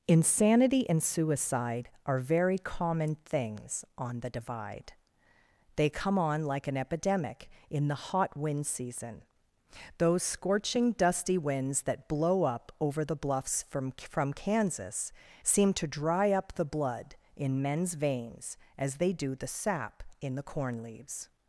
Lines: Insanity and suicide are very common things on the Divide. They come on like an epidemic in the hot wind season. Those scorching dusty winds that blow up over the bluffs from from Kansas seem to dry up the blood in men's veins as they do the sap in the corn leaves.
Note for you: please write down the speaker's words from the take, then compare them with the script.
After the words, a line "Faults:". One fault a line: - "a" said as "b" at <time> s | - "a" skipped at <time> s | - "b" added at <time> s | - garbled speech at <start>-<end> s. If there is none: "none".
Insanity and suicide are very common things on the Divide. They come on like an epidemic in the hot wind season. Those scorching dusty winds that blow up over the bluffs from from Kansas seem to dry up the blood in men's veins as they do the sap in the corn leaves.
Faults:
none